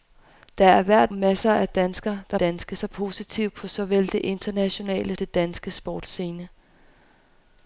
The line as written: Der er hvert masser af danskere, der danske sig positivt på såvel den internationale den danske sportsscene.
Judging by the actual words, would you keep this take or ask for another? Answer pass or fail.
pass